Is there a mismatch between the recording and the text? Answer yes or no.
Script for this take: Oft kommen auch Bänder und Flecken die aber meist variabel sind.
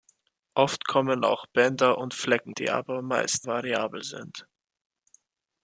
no